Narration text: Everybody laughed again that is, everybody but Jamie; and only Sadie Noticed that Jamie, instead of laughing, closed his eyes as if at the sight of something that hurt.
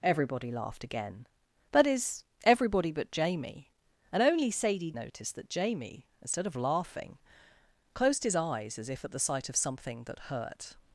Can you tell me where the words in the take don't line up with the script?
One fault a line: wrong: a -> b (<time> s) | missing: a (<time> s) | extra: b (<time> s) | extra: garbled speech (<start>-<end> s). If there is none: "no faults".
no faults